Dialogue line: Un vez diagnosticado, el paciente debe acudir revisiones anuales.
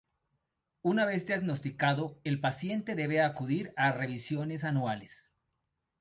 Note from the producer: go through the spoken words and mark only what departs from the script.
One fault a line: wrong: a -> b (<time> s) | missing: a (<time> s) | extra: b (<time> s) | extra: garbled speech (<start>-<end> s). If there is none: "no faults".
wrong: Un -> Una (0.8 s)
extra: a (3.7 s)